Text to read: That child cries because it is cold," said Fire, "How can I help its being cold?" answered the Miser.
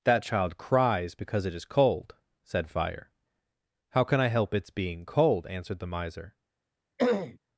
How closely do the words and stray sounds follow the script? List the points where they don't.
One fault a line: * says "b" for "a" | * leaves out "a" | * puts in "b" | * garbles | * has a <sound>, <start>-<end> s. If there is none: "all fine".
* has a throat clearing, 7.0-7.4 s